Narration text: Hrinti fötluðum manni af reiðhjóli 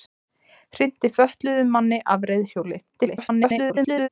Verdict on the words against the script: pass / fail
fail